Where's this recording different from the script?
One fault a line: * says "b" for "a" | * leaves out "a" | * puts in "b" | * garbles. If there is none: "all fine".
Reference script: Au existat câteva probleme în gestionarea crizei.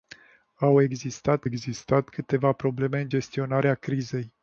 * puts in "existat"